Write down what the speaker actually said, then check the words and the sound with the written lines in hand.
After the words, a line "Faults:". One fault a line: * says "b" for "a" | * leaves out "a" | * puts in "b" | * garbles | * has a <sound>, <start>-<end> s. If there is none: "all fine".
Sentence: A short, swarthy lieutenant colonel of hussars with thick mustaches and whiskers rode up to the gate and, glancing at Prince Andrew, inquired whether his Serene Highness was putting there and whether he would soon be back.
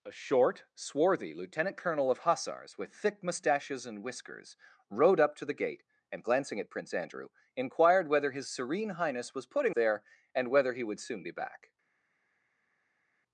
A short, swarthy lieutenant colonel of hussars with thick mustaches and whiskers rode up to the gate and, glancing at Prince Andrew, inquired whether his Serene Highness was putting there and whether he would soon be back.
Faults:
all fine